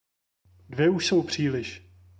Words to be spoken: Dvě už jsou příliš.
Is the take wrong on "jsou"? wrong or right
right